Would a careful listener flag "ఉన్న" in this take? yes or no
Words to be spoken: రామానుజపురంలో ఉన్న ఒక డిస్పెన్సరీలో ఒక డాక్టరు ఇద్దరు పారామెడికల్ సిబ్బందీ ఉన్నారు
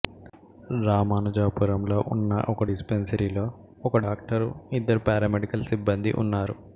no